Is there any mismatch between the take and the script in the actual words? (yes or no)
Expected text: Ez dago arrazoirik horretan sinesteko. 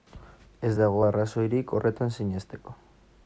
no